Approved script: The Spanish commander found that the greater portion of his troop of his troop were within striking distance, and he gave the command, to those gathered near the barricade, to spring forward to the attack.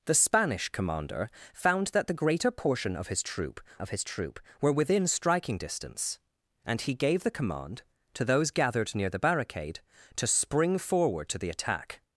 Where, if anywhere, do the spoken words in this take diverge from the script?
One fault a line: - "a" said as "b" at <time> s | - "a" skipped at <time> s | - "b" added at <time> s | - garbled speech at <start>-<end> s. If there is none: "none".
none